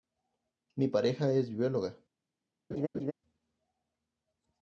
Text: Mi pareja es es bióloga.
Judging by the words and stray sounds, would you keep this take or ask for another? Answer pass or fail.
fail